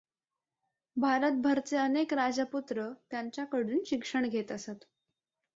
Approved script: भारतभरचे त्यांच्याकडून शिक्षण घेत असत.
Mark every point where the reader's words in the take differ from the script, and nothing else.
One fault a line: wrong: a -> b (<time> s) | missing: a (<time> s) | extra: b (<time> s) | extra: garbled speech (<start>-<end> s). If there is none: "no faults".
extra: अनेक राजपुत्र (1.8 s)